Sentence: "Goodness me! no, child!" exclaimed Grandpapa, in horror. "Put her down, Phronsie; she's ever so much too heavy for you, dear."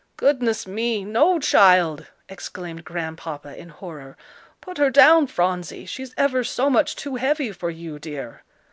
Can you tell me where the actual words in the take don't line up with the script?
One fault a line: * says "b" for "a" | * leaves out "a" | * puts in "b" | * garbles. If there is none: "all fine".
all fine